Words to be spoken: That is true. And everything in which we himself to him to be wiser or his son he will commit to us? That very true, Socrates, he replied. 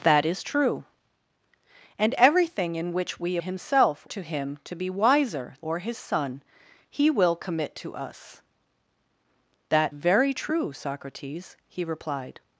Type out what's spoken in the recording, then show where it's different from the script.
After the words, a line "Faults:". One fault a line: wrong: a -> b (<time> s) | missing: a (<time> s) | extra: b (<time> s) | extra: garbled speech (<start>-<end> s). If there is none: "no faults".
That is true. And everything in which we himself to him to be wiser or his son he will commit to us? That very true, Socrates, he replied.
Faults:
no faults